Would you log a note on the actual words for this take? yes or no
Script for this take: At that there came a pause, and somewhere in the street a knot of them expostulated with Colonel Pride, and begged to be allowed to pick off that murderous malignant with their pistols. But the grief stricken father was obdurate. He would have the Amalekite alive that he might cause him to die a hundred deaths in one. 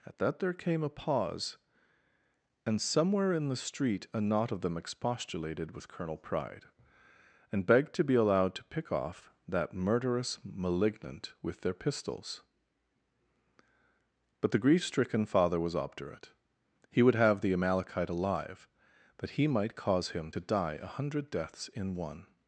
no